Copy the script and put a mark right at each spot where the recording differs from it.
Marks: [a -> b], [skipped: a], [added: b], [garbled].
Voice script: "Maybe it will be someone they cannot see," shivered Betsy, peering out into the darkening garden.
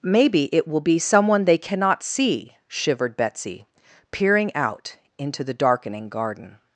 "Maybe it will be someone they cannot see," shivered Betsy, peering out into the darkening garden.